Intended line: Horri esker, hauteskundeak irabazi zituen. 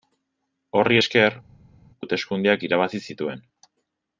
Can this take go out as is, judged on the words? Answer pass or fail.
pass